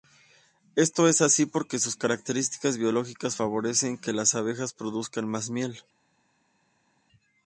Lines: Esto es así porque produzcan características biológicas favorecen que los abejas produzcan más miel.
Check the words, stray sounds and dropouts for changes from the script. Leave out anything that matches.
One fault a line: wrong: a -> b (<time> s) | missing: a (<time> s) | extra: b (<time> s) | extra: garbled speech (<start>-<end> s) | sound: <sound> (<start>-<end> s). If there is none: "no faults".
wrong: produzcan -> sus (1.8 s)
wrong: los -> las (4.1 s)